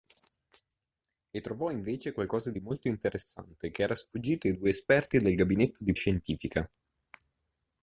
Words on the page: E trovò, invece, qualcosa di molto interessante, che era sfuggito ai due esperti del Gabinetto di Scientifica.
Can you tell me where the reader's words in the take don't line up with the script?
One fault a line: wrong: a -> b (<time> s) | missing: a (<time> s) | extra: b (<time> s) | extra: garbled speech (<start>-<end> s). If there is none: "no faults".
no faults